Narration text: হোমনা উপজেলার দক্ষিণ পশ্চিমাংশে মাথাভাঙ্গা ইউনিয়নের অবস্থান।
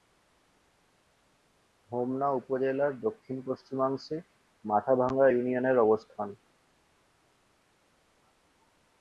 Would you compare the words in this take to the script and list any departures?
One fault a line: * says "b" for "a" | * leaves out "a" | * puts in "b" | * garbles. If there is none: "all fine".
all fine